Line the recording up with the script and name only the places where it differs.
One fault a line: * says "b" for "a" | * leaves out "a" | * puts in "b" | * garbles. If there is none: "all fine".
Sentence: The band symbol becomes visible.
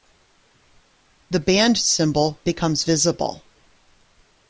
all fine